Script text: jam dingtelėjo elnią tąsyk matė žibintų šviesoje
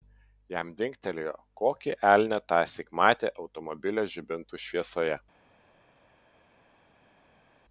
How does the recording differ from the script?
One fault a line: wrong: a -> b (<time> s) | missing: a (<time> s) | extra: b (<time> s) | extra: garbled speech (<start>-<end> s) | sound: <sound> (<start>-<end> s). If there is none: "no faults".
extra: kokį (1.6 s)
extra: automobilio (3.5 s)